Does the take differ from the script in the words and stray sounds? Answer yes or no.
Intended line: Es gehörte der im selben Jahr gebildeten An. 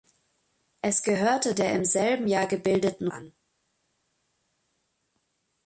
no